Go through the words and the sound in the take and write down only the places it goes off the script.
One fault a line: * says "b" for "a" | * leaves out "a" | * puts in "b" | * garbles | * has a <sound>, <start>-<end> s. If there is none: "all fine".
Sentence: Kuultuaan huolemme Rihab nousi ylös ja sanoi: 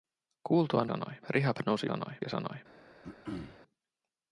* says "sanoi" for "huolemme"
* says "sanoi" for "ylös"
* has a throat clearing, 3.0-3.6 s